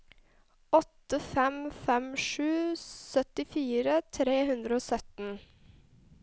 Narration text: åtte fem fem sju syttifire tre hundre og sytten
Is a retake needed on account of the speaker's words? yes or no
no